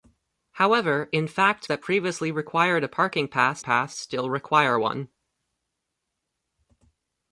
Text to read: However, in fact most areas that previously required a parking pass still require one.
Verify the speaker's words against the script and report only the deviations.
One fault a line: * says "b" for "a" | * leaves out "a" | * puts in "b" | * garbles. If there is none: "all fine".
* leaves out "most areas"
* puts in "pass"